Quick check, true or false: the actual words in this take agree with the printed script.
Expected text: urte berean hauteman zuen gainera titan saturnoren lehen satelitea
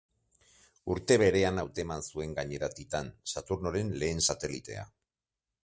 true